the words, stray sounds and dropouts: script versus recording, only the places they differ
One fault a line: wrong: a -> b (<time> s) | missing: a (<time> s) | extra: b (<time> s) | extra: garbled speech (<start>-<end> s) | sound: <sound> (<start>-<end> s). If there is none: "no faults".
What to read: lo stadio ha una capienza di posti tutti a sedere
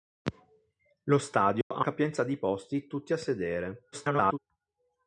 sound: dropout (1.6-1.7 s)
missing: una (1.8 s)
extra: garbled speech (3.9-4.4 s)